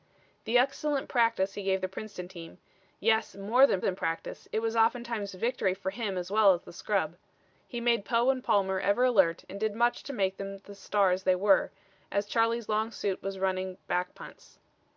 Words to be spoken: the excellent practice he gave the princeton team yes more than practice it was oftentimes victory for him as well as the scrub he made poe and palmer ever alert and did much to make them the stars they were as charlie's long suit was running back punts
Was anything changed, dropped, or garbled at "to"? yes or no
no